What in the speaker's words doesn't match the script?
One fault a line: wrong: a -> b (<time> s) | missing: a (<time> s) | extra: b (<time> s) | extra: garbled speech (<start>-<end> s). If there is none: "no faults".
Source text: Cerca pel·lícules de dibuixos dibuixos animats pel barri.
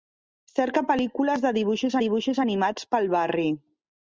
no faults